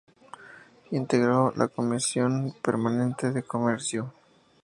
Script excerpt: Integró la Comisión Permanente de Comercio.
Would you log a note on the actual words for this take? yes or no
no